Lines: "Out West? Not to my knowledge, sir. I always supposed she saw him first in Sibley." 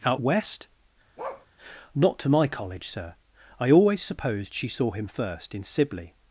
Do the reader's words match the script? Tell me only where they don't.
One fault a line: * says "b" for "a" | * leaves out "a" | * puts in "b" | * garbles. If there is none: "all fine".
* says "college" for "knowledge"